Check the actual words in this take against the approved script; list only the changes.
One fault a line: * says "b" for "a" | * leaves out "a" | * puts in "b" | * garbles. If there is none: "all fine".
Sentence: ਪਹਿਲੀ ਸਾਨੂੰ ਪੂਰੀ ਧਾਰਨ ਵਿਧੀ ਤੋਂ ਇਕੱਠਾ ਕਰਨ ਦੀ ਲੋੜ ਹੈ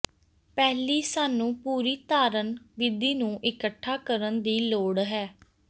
* says "ਨੂੰ" for "ਤੋਂ"